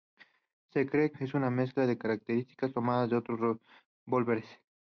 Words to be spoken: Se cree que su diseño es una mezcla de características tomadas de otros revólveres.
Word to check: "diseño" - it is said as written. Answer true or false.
false